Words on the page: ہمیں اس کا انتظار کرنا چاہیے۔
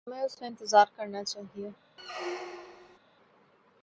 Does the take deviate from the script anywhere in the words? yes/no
no